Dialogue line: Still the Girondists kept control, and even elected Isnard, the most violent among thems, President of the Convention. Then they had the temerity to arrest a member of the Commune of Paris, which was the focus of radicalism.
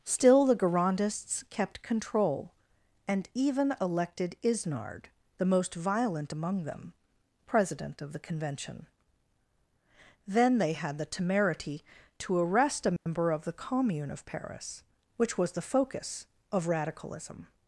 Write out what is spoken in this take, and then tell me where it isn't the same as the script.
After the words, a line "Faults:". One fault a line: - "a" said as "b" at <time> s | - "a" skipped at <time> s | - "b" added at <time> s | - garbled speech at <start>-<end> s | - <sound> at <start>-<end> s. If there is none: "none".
Still the Girondists kept control, and even elected Isnard, the most violent among them, President of the Convention. Then they had the temerity to arrest a member of the Commune of Paris, which was the focus of radicalism.
Faults:
- "thems" said as "them" at 6.6 s
- dropout at 13.0-13.1 s